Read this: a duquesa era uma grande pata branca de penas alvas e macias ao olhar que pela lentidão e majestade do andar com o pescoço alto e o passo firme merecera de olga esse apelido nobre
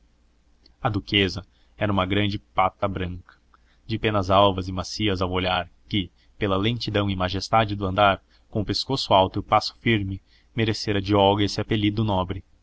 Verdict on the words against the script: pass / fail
pass